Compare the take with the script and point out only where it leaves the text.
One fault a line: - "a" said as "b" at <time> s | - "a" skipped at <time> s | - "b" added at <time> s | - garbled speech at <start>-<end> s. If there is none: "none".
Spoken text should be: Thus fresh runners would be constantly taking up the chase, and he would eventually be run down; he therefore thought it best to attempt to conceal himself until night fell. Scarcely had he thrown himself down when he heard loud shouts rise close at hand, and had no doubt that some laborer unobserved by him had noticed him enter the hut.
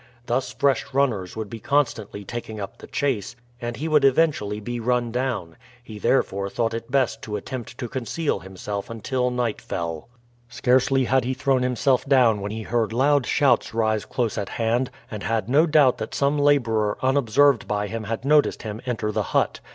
none